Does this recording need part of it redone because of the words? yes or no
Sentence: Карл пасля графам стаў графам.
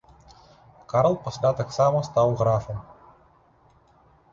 yes